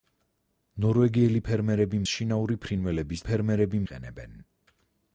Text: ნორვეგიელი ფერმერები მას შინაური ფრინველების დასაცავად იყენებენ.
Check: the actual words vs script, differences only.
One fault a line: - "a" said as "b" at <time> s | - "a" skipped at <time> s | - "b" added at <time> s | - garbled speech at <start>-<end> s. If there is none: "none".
- "მას" skipped at 2.0 s
- "დასაცავად" said as "ფერმერები" at 3.3 s